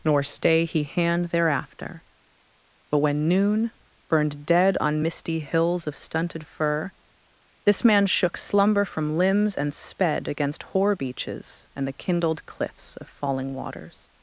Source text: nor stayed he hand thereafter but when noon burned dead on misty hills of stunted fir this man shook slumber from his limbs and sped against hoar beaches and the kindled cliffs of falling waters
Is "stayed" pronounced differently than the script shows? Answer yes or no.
yes